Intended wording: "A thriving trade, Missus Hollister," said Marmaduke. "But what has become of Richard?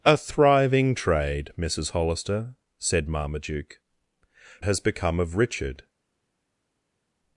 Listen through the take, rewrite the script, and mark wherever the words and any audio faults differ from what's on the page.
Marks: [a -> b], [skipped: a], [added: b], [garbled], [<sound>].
"A thriving trade, Missus Hollister," said Marmaduke. [skipped: "But what] has become of Richard?